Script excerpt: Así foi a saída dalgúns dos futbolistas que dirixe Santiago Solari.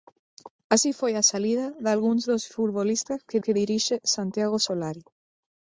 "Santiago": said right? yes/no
yes